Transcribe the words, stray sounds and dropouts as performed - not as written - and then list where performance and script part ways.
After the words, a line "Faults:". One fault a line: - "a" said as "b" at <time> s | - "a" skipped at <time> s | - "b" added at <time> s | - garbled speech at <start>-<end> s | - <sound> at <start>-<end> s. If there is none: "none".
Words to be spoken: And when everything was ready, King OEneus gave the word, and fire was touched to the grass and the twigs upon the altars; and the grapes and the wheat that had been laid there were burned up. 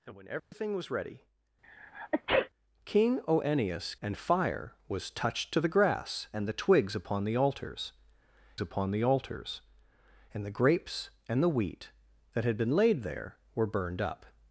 And when everything was ready, King OEneus and fire was touched to the grass and the twigs upon the altars upon the altars; and the grapes and the wheat that had been laid there were burned up.
Faults:
- dropout at 0.4-0.5 s
- sneeze at 1.6-2.5 s
- "gave the word" skipped at 4.0 s
- "upon the altars" added at 8.6 s